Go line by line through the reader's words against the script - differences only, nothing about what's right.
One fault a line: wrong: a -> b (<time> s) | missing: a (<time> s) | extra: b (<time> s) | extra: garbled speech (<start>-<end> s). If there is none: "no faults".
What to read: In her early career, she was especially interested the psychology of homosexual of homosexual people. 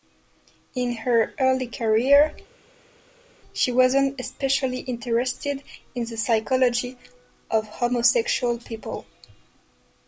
wrong: was -> wasn't (3.7 s)
extra: in (5.9 s)
missing: of homosexual (8.6 s)